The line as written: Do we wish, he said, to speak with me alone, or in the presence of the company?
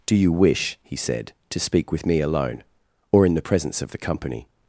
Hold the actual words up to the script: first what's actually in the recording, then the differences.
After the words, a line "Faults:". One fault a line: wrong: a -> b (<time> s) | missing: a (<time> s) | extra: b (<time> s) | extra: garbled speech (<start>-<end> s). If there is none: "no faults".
Do you wish, he said, to speak with me alone, or in the presence of the company?
Faults:
wrong: we -> you (0.1 s)